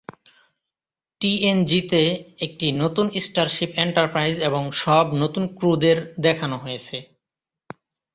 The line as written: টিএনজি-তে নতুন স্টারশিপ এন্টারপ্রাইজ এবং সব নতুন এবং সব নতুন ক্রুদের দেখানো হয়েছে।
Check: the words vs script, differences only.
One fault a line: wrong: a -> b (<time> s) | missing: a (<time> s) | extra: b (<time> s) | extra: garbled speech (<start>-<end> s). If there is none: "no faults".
extra: একটি (2.4 s)
missing: এবং সব নতুন (5.4 s)